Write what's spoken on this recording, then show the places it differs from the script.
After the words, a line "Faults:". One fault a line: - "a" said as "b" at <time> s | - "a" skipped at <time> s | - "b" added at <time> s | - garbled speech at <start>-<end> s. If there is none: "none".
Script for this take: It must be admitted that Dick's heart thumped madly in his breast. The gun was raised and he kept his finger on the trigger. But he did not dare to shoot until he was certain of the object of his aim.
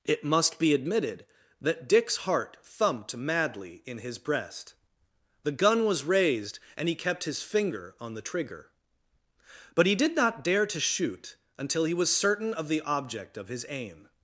It must be admitted that Dick's heart thumped madly in his breast. The gun was raised and he kept his finger on the trigger. But he did not dare to shoot until he was certain of the object of his aim.
Faults:
none